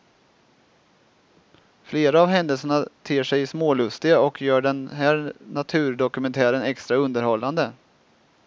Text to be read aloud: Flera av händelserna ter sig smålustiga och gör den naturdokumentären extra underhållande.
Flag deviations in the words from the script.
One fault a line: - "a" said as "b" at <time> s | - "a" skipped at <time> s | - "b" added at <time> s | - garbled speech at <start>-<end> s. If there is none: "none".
- "här" added at 4.9 s